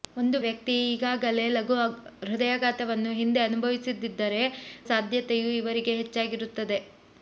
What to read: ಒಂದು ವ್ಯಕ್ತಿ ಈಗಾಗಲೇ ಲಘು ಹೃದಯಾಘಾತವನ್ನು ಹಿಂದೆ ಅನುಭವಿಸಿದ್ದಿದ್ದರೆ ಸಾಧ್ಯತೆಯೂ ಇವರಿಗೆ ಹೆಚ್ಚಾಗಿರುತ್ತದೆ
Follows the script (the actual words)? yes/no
yes